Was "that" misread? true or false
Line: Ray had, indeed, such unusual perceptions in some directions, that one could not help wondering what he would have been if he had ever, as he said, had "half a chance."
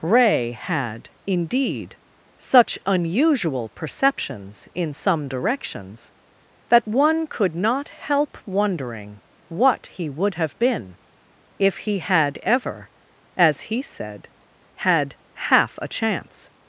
false